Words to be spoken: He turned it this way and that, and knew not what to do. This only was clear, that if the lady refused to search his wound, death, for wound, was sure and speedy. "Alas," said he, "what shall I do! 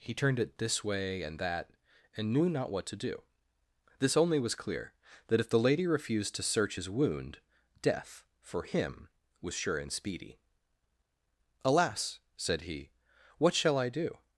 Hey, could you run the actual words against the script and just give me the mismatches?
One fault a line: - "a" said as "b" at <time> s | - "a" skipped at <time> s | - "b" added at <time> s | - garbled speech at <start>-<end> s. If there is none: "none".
- "wound" said as "him" at 8.6 s